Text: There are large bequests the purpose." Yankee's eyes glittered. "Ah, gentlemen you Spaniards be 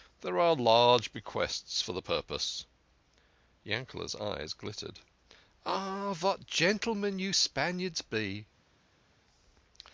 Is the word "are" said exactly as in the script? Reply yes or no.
yes